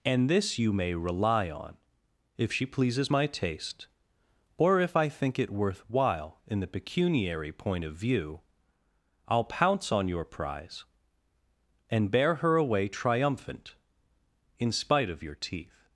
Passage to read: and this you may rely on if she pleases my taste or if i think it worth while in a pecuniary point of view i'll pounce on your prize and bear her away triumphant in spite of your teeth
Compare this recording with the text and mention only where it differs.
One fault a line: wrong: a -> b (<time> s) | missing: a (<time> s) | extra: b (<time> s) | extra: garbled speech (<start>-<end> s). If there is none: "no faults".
wrong: a -> the (6.6 s)